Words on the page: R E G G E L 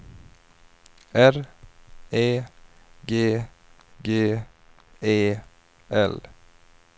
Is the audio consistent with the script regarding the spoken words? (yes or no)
yes